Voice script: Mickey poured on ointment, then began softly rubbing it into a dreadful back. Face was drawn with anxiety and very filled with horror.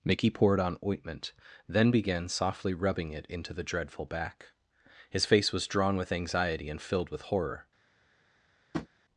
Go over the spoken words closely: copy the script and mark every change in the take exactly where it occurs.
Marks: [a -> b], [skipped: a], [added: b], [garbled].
Mickey poured on ointment, then began softly rubbing it into [a -> the] dreadful back. [added: His] Face was drawn with anxiety and [skipped: very] filled with horror.